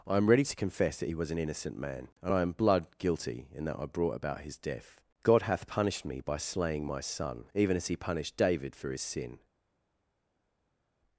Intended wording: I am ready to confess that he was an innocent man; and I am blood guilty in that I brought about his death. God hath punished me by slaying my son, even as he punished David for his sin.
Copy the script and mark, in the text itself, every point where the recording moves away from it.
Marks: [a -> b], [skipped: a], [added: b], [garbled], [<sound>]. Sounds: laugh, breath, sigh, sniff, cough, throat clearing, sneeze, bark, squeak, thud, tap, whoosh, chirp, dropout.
I am ready to confess that he was an innocent man; and I am blood guilty in that I brought about his death. God hath punished me by slaying my son, even as he punished David for his sin.